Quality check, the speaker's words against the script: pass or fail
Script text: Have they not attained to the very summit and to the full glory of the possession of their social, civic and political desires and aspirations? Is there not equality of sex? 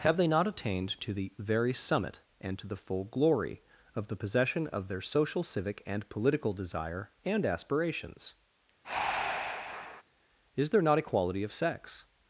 fail